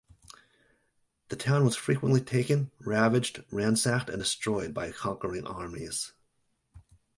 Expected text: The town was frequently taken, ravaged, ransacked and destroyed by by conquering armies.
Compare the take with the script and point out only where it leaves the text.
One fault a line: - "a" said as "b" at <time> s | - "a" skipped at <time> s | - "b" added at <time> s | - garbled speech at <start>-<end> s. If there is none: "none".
- "by" skipped at 4.9 s